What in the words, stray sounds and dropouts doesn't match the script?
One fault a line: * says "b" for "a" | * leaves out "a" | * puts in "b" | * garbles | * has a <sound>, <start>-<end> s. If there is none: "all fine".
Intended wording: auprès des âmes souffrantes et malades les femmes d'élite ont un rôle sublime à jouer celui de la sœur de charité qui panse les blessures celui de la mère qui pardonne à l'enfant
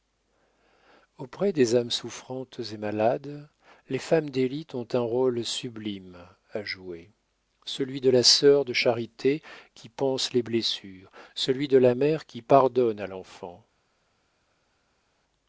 all fine